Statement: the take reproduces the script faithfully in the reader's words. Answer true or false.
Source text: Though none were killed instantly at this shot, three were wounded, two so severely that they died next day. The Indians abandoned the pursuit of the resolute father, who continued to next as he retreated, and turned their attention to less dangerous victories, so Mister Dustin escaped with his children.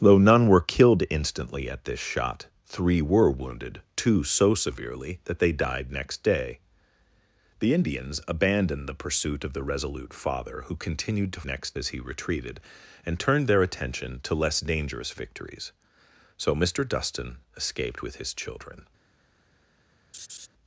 true